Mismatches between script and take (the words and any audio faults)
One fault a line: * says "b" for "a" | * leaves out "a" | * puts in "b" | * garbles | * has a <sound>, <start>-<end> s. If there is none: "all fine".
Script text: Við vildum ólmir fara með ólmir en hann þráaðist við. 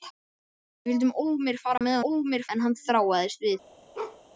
* has a dropout, 1.8-1.8 s
* has a bark, 3.9-4.2 s